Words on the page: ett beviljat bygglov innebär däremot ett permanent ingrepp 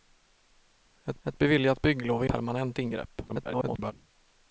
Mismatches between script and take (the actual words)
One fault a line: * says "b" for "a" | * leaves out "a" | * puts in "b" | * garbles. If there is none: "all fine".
* puts in "ett"
* leaves out "innebär däremot ett"
* garbles